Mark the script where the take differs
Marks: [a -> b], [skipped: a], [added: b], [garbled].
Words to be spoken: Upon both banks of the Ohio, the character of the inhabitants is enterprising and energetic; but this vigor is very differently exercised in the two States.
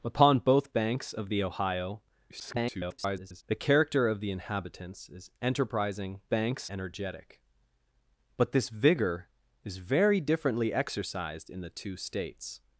Upon both banks of the Ohio, [garbled] the character of the inhabitants is enterprising [and -> banks] energetic; but this vigor is very differently exercised in the two States.